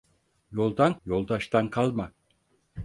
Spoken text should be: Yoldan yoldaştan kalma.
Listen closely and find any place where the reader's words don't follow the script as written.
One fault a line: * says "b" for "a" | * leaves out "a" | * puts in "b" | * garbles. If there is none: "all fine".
all fine